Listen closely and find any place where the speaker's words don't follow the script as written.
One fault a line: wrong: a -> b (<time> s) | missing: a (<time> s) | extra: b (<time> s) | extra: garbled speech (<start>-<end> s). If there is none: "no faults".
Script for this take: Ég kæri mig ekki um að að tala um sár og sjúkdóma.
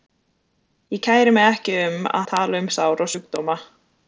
no faults